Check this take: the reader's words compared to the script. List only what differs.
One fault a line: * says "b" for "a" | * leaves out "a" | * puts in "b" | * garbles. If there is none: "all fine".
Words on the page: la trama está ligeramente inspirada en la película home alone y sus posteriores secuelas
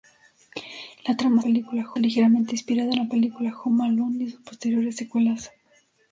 * says "película" for "está"